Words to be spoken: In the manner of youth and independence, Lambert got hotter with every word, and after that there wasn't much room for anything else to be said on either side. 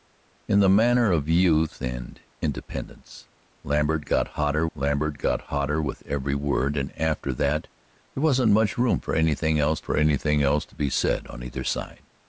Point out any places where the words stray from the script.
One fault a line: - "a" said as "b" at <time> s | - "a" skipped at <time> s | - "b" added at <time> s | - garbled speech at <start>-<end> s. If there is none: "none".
- "Lambert got hotter" added at 4.7 s
- "for anything else" added at 9.8 s